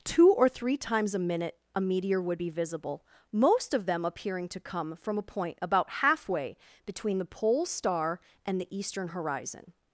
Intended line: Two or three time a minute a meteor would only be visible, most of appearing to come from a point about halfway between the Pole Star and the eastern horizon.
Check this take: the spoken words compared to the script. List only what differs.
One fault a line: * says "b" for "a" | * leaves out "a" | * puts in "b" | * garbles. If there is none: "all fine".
* says "times" for "time"
* leaves out "only"
* puts in "them"